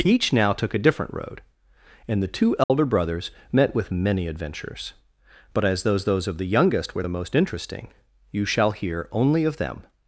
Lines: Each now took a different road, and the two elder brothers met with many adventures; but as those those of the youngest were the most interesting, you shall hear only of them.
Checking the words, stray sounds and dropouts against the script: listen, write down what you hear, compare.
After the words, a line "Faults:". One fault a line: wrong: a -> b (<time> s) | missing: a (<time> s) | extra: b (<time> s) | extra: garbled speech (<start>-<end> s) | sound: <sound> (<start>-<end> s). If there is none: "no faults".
Each now took a different road, and the two elder brothers met with many adventures; but as those those of the youngest were the most interesting, you shall hear only of them.
Faults:
sound: dropout (2.6-2.7 s)